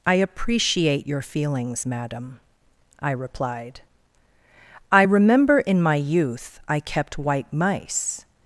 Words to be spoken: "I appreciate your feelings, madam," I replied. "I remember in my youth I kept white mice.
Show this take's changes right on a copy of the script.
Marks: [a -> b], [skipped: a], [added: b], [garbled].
"I appreciate your feelings, madam," I replied. "I remember in my youth I kept white mice.